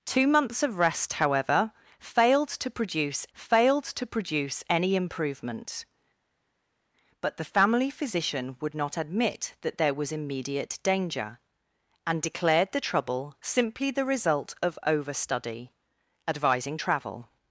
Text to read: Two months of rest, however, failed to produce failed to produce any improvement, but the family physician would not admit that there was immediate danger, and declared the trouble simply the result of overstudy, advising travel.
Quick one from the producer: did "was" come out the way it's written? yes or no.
yes